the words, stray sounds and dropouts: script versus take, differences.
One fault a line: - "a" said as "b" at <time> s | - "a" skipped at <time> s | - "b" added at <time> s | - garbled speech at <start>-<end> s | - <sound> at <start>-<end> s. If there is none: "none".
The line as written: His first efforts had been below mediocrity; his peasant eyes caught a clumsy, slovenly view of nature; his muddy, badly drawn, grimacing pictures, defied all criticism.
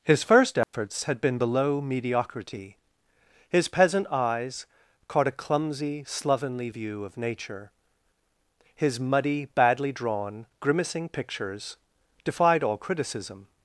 - dropout at 0.6-0.7 s